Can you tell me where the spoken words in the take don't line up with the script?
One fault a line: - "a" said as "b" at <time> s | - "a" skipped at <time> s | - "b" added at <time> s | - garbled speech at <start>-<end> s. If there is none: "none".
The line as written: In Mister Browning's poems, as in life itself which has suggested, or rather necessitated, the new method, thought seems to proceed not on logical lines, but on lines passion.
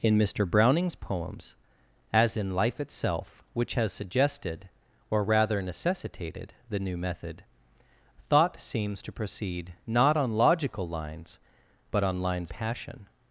none